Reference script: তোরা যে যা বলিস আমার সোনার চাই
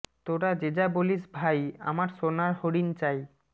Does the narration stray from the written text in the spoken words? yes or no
yes